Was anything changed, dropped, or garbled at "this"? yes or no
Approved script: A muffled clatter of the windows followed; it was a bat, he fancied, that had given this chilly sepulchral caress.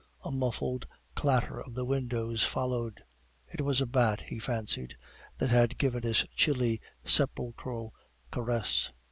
no